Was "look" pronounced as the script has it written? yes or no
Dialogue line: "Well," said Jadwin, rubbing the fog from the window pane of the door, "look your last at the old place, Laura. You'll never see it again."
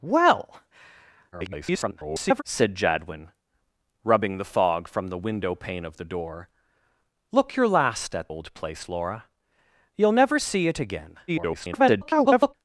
yes